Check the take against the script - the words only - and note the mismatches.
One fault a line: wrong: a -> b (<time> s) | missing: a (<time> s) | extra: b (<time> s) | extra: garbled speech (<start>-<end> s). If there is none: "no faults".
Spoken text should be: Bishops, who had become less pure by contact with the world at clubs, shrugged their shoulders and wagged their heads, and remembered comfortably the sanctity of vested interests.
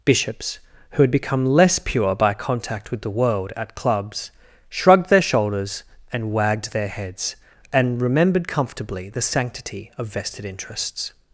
no faults